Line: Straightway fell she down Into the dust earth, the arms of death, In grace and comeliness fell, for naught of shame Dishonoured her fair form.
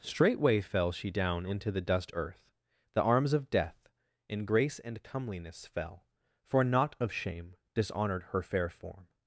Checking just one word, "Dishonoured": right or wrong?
right